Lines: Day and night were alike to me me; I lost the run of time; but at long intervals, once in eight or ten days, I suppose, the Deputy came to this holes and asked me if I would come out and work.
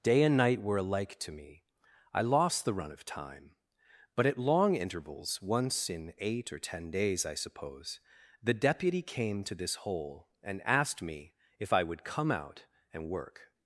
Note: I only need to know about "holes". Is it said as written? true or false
false